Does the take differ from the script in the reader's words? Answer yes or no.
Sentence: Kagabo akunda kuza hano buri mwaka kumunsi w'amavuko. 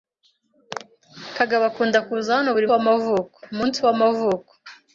yes